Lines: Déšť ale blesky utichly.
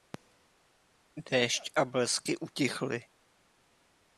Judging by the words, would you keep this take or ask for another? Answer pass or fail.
fail